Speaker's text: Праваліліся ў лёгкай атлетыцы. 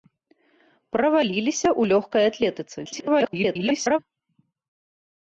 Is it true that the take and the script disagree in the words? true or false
true